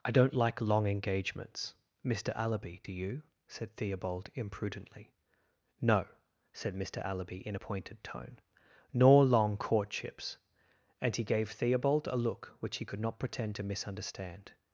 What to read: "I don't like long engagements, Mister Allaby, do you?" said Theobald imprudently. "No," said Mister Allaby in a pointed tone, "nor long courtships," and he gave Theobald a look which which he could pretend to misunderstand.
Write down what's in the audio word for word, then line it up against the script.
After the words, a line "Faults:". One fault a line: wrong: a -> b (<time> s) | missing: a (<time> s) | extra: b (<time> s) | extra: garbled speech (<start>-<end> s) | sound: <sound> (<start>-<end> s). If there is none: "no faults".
"I don't like long engagements, Mister Allaby, do you?" said Theobald imprudently. "No," said Mister Allaby in a pointed tone, "nor long courtships," and he gave Theobald a look which he could not pretend to misunderstand.
Faults:
missing: which (12.8 s)
extra: not (13.0 s)